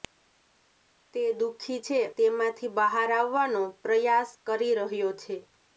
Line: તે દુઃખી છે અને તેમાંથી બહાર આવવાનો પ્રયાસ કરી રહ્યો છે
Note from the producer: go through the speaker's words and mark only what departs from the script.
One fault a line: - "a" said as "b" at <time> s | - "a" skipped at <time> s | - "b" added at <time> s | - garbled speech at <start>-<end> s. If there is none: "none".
- "અને" skipped at 2.0 s